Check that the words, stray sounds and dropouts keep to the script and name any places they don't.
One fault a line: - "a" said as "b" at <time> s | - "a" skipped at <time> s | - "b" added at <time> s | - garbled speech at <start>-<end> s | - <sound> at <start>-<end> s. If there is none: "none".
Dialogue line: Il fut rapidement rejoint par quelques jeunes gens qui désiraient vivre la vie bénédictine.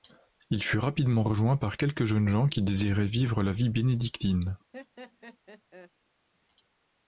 - laugh at 4.7-5.9 s